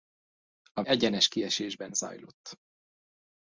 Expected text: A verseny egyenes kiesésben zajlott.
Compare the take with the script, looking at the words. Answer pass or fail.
fail